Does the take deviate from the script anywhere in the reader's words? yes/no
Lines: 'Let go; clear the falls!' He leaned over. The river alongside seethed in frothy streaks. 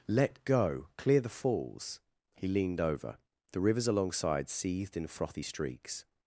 yes